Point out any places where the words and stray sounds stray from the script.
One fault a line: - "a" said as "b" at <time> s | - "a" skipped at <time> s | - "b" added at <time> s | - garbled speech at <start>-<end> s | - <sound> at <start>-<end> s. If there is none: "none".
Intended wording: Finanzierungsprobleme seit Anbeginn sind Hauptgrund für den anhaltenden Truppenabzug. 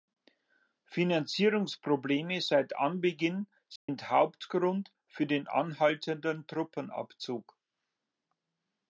- dropout at 3.8-3.9 s